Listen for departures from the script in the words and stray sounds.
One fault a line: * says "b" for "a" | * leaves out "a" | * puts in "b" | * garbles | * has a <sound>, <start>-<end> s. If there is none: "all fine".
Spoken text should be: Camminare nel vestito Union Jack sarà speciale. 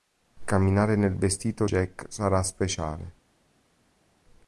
* leaves out "Union"